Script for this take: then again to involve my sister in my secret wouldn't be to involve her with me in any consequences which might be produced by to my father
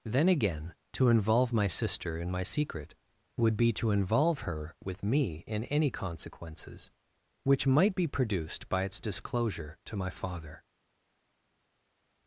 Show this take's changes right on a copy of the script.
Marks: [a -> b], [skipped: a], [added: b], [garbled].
then again to involve my sister in my secret [wouldn't -> would] be to involve her with me in any consequences which might be produced by [added: its disclosure] to my father